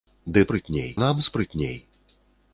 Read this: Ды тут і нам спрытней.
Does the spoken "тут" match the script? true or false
false